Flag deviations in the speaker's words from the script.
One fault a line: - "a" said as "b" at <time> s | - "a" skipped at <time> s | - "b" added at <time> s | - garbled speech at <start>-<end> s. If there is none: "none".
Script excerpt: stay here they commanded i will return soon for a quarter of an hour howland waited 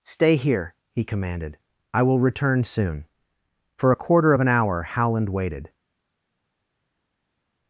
- "they" said as "he" at 0.9 s